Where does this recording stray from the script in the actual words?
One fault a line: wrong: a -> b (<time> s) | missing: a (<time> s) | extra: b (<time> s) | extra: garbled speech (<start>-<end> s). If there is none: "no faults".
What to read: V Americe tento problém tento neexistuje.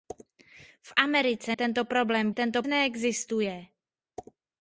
no faults